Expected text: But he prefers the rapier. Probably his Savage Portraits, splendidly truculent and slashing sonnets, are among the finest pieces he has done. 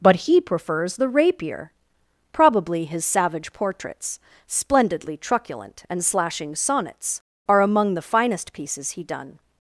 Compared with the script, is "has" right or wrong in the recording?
wrong